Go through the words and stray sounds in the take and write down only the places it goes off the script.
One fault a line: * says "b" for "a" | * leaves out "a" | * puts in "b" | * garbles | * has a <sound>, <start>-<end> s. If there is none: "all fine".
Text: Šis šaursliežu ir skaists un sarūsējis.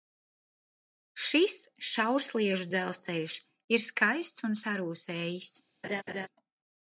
* puts in "dzelzceļš"
* has a laugh, 5.8-6.3 s